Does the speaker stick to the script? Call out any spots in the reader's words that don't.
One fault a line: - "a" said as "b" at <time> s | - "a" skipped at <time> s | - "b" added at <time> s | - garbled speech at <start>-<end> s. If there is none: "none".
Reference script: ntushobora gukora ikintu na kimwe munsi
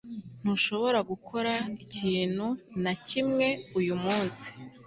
- "uyu" added at 3.8 s